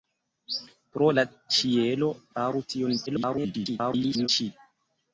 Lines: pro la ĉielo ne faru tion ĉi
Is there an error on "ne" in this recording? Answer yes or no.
yes